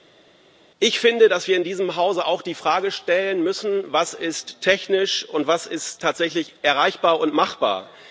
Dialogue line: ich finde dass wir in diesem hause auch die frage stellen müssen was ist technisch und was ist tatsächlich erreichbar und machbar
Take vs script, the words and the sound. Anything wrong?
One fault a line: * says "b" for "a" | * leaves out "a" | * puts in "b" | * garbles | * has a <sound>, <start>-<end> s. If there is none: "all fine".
all fine